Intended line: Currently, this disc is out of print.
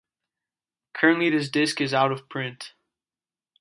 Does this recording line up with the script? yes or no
yes